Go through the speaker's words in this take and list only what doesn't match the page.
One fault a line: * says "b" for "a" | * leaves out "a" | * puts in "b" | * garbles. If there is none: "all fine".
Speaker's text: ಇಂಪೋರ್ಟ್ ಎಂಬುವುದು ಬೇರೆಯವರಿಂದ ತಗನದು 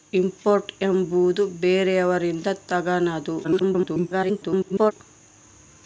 * garbles